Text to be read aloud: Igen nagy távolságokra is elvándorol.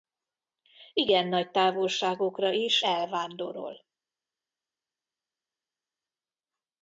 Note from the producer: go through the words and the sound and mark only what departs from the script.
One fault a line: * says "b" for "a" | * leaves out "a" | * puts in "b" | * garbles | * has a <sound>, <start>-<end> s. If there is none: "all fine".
all fine